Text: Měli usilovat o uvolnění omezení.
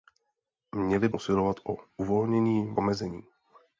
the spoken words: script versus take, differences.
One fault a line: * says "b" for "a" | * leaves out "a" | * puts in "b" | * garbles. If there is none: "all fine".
all fine